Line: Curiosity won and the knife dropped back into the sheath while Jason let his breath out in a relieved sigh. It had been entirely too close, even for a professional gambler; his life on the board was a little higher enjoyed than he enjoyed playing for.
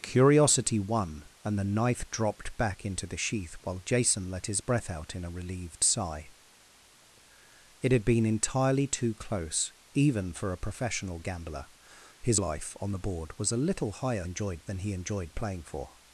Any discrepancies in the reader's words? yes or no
no